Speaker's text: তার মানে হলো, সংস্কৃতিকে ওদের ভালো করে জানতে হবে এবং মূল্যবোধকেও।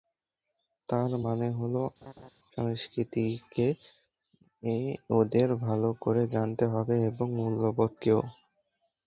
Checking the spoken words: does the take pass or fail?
pass